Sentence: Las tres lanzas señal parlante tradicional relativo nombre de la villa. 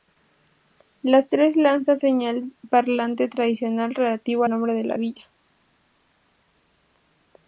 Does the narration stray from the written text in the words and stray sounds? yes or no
no